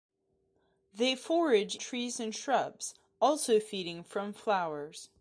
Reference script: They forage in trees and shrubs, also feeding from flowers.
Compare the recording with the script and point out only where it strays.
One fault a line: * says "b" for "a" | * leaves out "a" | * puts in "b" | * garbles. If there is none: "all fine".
* leaves out "in"